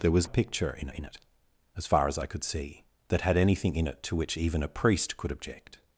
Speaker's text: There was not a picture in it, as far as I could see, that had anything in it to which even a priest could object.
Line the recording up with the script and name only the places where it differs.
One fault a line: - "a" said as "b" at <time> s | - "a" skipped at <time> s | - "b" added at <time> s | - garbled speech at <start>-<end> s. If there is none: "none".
- "not" skipped at 0.3 s
- "in" added at 0.9 s